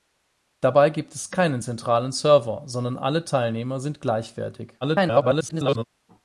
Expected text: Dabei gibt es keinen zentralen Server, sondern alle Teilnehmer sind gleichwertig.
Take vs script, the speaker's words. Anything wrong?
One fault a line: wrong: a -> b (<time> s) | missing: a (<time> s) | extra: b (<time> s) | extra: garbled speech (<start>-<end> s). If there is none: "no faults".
extra: garbled speech (4.8-5.8 s)